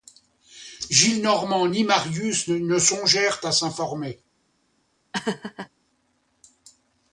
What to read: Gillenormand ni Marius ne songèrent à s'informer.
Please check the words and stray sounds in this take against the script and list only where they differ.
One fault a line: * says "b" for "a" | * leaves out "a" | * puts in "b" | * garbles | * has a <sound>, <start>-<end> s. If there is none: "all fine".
* has a laugh, 5.1-5.7 s